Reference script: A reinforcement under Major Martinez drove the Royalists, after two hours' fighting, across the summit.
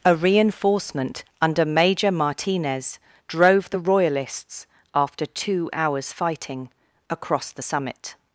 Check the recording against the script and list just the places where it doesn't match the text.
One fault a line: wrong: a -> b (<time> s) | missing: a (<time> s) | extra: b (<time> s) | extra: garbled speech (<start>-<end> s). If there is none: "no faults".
no faults